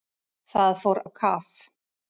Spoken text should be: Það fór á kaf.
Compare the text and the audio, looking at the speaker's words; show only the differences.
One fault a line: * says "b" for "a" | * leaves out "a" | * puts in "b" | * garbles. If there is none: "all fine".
all fine